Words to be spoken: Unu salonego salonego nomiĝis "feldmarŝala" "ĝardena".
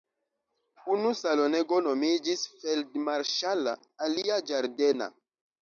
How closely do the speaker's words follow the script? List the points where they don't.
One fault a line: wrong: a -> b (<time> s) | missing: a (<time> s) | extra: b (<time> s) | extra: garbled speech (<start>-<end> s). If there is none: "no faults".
missing: salonego (1.8 s)
extra: alia (4.1 s)